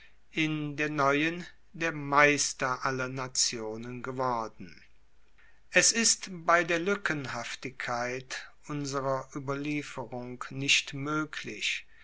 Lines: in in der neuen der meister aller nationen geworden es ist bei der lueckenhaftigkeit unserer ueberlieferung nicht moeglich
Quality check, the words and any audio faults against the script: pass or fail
fail